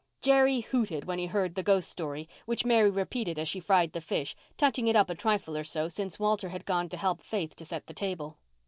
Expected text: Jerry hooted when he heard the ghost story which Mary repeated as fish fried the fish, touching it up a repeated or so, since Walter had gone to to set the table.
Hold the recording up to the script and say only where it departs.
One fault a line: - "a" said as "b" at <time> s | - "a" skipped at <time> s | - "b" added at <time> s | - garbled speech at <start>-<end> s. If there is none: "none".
- "fish" said as "she" at 3.5 s
- "repeated" said as "trifle" at 5.1 s
- "help Faith" added at 7.0 s